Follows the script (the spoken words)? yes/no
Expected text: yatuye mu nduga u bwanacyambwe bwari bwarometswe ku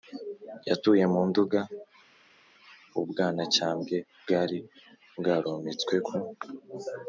yes